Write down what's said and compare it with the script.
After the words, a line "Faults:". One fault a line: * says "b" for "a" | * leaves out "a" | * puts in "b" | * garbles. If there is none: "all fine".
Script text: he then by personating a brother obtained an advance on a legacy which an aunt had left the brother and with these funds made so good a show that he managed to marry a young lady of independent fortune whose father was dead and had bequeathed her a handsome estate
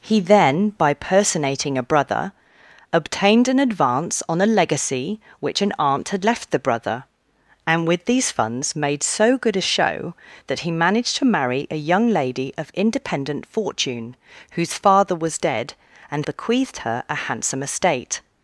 he then by personating a brother obtained an advance on a legacy which an aunt had left the brother and with these funds made so good a show that he managed to marry a young lady of independent fortune whose father was dead and bequeathed her a handsome estate
Faults:
* leaves out "had"